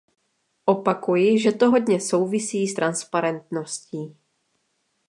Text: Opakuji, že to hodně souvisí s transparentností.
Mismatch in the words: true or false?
false